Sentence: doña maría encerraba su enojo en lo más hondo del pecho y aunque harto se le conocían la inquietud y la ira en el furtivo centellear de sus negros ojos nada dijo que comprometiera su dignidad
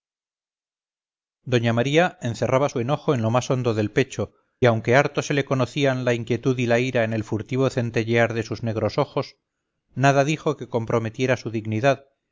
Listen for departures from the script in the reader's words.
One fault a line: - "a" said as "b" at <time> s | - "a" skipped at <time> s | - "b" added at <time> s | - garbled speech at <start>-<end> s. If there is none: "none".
- "y" skipped at 4.3 s